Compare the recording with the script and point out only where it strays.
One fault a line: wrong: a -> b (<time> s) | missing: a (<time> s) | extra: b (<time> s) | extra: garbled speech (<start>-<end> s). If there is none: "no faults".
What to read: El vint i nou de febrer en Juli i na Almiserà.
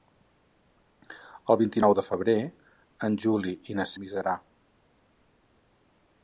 no faults